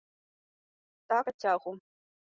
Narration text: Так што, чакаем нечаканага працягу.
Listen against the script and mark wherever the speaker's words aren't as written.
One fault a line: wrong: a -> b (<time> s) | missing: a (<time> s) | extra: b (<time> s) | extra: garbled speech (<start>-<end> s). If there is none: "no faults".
missing: што чакаем нечаканага (1.2 s)